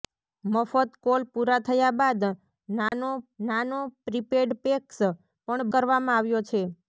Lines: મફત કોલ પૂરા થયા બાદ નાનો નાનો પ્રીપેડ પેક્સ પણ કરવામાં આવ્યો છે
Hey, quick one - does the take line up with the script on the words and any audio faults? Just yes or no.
no